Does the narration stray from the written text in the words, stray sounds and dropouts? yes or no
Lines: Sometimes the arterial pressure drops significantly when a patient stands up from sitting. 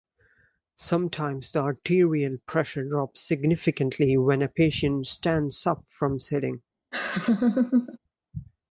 yes